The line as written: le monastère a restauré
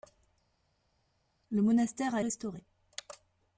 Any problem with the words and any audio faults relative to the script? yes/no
no